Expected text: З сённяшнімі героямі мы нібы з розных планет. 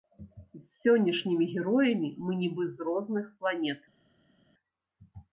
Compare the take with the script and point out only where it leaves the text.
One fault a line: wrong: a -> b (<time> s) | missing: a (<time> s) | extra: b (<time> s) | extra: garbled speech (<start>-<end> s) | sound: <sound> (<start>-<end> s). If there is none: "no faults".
no faults